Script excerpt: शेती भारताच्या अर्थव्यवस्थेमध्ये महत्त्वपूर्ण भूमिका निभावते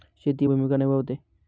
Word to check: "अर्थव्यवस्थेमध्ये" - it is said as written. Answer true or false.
false